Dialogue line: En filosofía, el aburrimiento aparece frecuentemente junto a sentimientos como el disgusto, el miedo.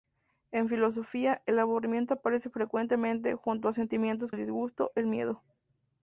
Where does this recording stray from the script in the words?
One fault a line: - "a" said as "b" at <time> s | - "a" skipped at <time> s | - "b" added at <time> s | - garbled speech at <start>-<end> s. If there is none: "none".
- "como" skipped at 4.3 s